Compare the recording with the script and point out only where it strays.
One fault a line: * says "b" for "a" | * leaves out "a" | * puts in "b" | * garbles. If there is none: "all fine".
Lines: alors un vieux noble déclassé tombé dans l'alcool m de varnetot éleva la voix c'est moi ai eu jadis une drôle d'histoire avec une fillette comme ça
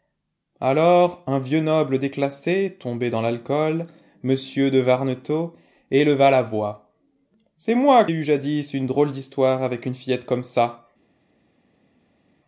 all fine